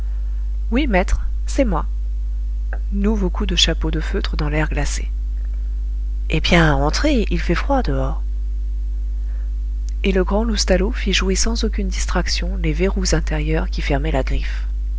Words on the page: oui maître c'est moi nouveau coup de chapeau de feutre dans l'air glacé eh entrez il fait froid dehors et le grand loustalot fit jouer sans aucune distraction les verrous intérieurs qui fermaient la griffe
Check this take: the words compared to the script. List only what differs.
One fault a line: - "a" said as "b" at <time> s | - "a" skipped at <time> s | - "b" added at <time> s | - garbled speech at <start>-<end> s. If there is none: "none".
- "bien" added at 6.4 s